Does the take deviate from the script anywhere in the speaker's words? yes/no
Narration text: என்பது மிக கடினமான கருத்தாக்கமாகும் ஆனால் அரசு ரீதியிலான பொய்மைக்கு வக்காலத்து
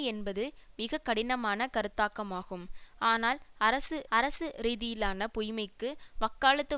yes